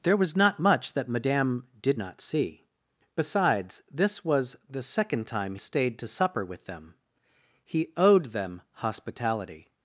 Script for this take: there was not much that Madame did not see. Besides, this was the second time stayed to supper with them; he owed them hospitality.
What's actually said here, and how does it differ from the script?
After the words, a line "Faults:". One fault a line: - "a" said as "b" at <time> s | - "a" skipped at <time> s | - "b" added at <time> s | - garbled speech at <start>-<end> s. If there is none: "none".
there was not much that Madame did not see. Besides, this was the second time stayed to supper with them; he owed them hospitality.
Faults:
none